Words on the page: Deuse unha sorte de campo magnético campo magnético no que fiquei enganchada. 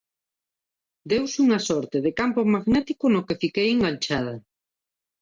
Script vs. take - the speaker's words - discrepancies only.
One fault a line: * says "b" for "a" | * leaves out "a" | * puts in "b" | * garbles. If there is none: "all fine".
* leaves out "campo magnético"